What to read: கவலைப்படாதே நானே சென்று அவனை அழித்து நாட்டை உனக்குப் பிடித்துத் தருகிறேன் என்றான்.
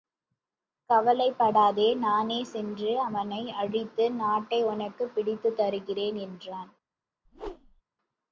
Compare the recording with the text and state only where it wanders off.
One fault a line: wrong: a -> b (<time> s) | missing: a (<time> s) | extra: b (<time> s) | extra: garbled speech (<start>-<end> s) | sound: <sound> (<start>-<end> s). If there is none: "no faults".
sound: whoosh (7.2-7.8 s)